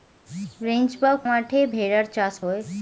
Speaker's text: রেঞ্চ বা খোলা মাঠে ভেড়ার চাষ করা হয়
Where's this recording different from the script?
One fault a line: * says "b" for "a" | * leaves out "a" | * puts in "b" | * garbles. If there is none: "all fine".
* leaves out "খোলা"
* leaves out "করা"